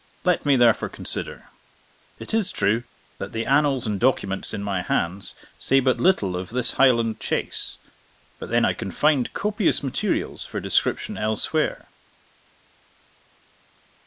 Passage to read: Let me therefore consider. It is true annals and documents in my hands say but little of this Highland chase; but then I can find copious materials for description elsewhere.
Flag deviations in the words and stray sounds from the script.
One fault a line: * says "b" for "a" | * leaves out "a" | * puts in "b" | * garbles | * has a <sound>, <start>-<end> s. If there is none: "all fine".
* puts in "that the"